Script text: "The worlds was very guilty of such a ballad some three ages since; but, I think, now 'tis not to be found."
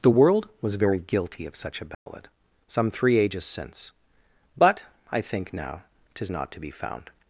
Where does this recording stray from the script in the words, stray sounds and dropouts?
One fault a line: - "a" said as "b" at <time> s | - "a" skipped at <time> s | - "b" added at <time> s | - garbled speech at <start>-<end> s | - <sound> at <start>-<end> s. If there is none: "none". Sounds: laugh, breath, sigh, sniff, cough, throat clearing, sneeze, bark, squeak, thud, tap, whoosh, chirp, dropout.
- "worlds" said as "world" at 0.1 s
- dropout at 1.9-2.1 s